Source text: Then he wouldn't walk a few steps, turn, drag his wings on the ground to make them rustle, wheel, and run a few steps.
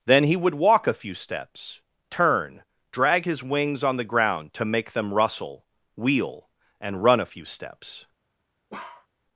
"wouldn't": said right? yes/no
no